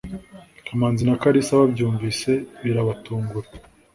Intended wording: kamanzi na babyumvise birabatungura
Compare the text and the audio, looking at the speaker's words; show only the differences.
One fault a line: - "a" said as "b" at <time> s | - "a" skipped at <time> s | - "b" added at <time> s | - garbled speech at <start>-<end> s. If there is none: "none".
- "kalisa" added at 1.2 s